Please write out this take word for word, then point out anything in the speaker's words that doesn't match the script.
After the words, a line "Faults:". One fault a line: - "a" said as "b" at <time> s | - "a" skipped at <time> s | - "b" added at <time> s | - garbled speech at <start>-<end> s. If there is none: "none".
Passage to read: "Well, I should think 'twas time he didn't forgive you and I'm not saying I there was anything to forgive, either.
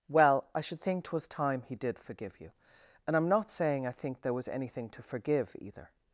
"Well, I should think 'twas time he did forgive you and I'm not saying I think there was anything to forgive, either.
Faults:
- "didn't" said as "did" at 1.8 s
- "think" added at 3.9 s